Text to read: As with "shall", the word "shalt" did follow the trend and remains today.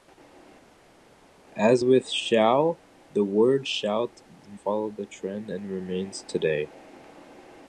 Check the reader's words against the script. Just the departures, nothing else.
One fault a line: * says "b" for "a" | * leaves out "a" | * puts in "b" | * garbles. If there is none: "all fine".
all fine